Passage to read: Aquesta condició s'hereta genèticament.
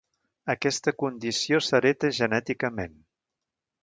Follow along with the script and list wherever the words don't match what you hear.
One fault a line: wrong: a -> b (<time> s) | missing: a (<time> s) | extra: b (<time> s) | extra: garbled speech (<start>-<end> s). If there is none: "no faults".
no faults